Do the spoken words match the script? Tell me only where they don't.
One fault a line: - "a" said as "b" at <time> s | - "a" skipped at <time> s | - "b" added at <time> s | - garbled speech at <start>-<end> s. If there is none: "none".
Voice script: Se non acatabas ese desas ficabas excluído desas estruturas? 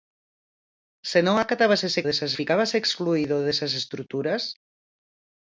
none